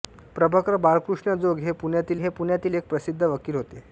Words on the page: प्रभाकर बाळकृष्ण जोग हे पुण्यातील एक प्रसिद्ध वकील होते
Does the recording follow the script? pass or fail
fail